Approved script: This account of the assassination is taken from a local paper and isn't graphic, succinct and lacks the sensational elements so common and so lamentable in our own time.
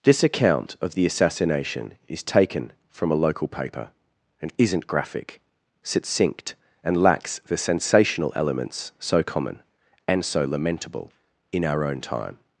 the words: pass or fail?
pass